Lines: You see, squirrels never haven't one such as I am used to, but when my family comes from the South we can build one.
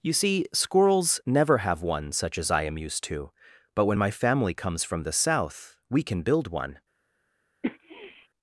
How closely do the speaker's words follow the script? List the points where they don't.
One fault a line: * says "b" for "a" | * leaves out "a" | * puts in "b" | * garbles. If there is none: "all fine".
* says "have" for "haven't"